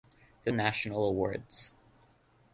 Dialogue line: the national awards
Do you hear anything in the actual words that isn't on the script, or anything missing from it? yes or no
no